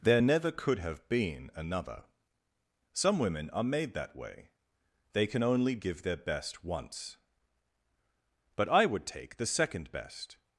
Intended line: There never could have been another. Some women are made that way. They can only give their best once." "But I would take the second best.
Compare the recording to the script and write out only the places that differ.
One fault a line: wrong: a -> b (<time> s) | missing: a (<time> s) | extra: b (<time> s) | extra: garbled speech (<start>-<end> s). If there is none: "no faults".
no faults